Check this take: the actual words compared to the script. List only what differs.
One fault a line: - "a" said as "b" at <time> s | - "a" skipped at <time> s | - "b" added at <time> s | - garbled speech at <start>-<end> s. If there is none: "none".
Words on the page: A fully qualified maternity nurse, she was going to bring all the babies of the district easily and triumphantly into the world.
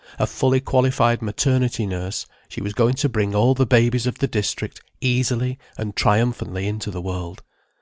none